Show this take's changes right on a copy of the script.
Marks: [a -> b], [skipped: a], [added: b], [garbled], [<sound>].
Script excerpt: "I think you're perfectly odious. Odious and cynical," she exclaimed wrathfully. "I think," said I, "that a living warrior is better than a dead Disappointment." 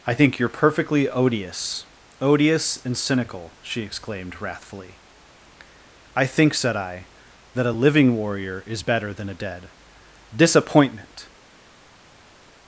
"I think you're perfectly odious. Odious and cynical," she exclaimed wrathfully. "I think," said I, "that a living warrior is better than a dead Disappointment."